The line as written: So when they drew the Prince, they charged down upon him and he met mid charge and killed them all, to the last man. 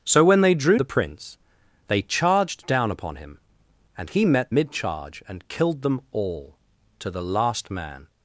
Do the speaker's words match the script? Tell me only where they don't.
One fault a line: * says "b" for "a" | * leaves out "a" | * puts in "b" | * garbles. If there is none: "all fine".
all fine